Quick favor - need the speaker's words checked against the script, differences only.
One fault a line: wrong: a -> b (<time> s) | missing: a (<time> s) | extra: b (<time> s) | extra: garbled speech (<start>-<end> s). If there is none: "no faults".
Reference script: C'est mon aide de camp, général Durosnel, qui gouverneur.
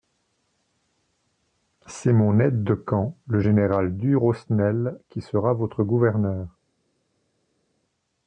extra: le (3.3 s)
extra: sera votre (5.2 s)